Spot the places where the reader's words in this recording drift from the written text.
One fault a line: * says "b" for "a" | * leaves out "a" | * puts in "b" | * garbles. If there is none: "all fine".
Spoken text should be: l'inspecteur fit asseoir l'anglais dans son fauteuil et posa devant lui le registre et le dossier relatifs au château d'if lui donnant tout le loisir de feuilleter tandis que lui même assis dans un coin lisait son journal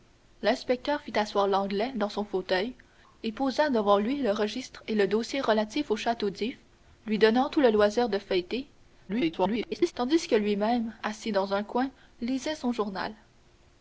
* garbles